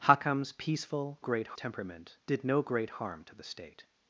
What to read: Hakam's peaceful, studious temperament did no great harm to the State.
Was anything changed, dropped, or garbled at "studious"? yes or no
yes